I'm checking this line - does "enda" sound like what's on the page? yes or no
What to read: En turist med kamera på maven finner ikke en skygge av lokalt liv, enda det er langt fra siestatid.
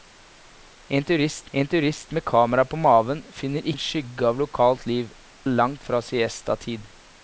no